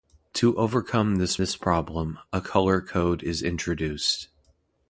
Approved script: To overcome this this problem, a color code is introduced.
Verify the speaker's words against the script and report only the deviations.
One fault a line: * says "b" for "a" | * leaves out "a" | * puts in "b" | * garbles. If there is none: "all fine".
all fine